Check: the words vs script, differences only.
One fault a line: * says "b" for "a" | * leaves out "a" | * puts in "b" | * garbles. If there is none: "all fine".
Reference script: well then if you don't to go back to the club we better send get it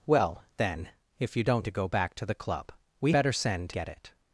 all fine